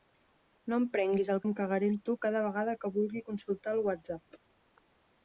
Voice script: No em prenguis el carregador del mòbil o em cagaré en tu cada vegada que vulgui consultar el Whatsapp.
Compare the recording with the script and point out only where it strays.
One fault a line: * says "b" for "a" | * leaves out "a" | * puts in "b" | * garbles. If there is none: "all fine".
* leaves out "carregador del mòbil"